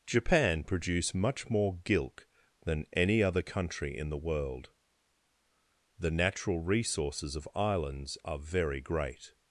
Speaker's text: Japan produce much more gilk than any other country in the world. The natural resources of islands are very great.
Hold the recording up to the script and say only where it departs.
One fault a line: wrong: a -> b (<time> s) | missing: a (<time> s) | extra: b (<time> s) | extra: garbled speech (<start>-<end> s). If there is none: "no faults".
no faults